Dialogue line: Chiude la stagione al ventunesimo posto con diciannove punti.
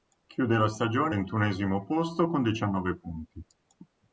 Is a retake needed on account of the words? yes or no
yes